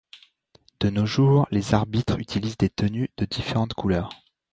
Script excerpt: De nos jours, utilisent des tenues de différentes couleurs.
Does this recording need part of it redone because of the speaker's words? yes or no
yes